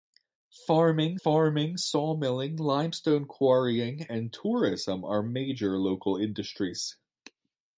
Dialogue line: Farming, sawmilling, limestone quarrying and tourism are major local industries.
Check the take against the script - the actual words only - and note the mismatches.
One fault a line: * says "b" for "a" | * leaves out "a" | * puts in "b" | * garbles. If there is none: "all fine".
* puts in "farming"